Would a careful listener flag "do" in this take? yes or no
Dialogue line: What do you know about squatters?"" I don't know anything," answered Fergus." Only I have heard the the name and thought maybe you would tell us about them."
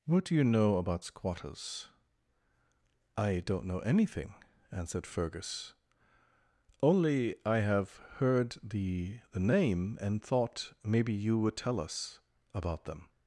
no